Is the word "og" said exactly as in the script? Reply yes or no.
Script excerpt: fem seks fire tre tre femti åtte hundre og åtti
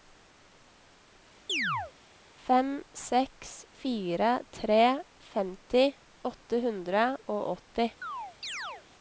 yes